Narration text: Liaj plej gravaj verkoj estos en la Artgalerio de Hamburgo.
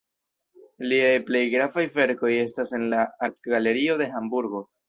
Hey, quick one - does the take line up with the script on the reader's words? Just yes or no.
no